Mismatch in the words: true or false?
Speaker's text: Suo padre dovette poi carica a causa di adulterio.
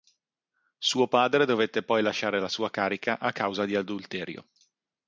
true